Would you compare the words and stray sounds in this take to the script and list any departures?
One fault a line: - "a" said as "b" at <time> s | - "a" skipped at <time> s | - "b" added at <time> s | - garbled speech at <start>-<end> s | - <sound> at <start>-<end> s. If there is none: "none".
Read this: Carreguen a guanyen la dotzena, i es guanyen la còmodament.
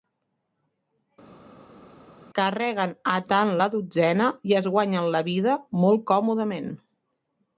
- "guanyen" said as "tant" at 3.3 s
- "vida molt" added at 5.3 s